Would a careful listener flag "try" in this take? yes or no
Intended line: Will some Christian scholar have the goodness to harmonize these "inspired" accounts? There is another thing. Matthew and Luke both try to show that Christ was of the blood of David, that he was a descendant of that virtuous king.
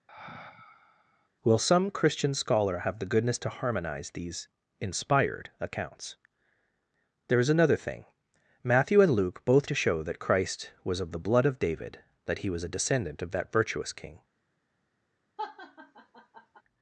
yes